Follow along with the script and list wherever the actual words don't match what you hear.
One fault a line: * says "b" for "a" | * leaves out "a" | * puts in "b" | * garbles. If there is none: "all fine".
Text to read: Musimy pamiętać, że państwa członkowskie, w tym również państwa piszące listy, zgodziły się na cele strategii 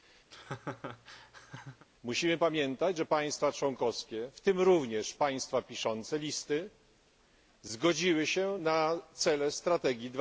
all fine